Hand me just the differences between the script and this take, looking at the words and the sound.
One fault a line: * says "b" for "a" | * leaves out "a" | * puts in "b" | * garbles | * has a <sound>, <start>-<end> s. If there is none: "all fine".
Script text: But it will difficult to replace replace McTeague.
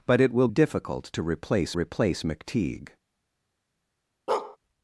* has a bark, 4.3-4.6 s